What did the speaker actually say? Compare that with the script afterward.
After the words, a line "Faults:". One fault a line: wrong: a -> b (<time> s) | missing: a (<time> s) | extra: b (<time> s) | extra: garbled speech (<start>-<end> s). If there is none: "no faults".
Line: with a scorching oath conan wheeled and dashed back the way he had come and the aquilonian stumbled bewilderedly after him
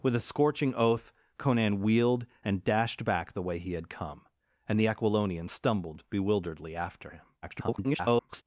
with a scorching oath conan wheeled and dashed back the way he had come and the aquilonian stumbled bewilderedly after him [garbled]
Faults:
extra: garbled speech (7.4-8.4 s)